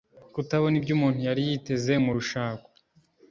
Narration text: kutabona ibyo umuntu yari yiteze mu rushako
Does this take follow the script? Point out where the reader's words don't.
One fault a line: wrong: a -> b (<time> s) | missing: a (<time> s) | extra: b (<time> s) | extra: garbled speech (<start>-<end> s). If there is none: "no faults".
no faults